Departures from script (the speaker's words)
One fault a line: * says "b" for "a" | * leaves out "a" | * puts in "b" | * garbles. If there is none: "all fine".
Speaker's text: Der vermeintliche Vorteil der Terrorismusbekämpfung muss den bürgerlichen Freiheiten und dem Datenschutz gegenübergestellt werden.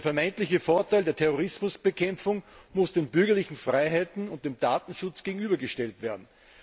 all fine